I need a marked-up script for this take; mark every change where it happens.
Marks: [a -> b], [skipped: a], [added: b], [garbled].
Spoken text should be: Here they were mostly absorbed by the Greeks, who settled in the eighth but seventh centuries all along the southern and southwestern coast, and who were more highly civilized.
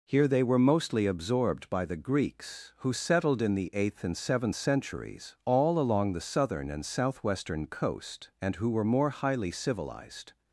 Here they were mostly absorbed by the Greeks, who settled in the eighth [but -> and] seventh centuries all along the southern and southwestern coast, and who were more highly civilized.